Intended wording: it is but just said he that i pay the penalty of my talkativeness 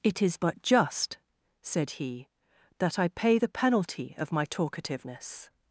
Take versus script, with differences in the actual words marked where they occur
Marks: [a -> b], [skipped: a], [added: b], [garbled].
it is but just said he that i pay the penalty of my talkativeness